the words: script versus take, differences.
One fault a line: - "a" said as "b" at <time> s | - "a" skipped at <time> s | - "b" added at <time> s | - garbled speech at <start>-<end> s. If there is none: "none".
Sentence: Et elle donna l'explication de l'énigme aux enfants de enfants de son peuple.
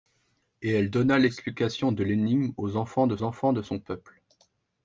none